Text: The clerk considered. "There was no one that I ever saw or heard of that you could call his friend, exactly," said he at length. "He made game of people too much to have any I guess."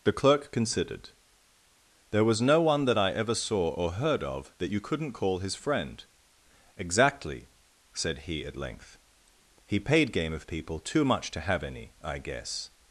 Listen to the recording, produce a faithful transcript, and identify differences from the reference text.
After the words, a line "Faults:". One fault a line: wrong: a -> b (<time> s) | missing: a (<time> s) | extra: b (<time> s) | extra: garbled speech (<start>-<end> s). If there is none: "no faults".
The clerk considered. "There was no one that I ever saw or heard of that you couldn't call his friend, exactly," said he at length. "He paid game of people too much to have any I guess."
Faults:
wrong: could -> couldn't (4.8 s)
wrong: made -> paid (9.8 s)